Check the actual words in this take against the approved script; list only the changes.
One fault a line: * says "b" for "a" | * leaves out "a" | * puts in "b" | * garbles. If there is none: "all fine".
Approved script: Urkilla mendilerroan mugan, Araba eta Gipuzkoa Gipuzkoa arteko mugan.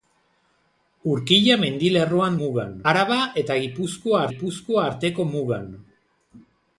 all fine